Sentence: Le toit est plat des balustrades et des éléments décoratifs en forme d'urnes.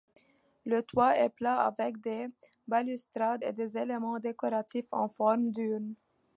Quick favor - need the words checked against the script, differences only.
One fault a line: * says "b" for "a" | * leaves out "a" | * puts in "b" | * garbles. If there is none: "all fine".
* puts in "avec"